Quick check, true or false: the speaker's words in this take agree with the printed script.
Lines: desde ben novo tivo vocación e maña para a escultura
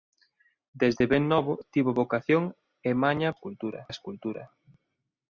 false